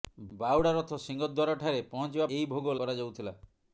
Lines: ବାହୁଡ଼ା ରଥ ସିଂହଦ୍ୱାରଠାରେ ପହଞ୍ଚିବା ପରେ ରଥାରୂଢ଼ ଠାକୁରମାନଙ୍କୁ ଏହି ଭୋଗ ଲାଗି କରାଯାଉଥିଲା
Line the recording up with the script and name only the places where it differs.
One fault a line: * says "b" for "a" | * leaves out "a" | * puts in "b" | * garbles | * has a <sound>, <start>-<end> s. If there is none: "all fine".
* leaves out "ପରେ ରଥାରୂଢ଼ ଠାକୁରମାନଙ୍କୁ"
* leaves out "ଲାଗି"